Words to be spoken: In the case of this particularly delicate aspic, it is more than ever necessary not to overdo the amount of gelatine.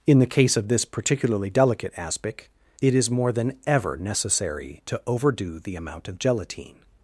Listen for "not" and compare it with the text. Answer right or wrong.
wrong